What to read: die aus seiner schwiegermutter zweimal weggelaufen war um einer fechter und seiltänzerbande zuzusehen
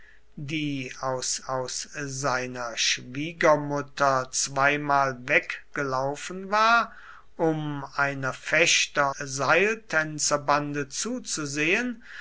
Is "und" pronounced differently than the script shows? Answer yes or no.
yes